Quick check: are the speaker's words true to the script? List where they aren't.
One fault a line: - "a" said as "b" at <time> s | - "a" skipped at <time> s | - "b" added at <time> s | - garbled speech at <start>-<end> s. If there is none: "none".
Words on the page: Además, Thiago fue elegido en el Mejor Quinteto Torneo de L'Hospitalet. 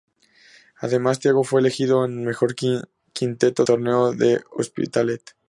none